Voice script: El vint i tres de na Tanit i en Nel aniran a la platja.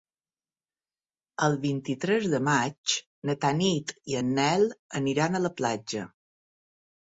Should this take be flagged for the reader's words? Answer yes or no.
yes